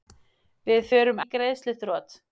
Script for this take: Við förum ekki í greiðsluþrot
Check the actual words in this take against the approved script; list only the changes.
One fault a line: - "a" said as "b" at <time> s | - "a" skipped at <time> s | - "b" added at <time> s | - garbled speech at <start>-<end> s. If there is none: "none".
- "ekki" skipped at 1.2 s